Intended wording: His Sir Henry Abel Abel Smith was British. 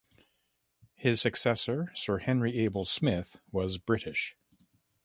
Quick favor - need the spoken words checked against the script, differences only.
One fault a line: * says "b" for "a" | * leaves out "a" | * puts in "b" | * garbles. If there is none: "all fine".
* puts in "successor"
* leaves out "Abel"